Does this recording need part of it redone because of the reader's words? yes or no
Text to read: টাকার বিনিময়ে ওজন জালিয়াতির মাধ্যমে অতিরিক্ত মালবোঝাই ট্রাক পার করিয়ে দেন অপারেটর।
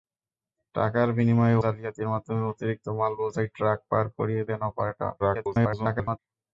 yes